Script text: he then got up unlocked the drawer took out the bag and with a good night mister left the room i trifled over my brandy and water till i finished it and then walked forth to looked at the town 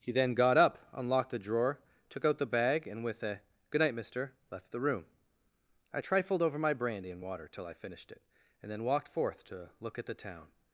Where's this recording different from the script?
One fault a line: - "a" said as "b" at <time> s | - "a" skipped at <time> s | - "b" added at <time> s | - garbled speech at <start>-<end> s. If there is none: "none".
- "looked" said as "look" at 9.8 s